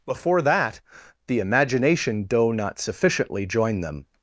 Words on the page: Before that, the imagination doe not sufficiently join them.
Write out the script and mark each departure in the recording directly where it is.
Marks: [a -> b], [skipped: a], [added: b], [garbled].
Before that, the imagination doe not sufficiently join them.